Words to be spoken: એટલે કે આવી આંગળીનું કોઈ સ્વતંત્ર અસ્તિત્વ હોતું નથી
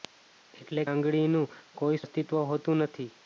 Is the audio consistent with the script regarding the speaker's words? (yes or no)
no